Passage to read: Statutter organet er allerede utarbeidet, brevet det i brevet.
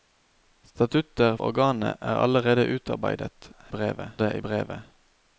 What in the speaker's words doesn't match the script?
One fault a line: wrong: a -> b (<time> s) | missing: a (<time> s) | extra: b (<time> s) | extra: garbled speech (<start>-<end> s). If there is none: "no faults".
no faults